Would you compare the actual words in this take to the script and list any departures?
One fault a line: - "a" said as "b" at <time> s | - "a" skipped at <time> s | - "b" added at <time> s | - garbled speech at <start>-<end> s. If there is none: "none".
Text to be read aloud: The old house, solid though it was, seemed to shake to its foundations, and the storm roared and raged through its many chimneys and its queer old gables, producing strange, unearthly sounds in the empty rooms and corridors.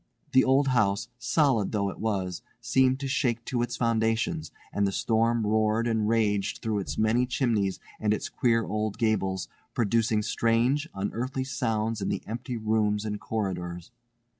none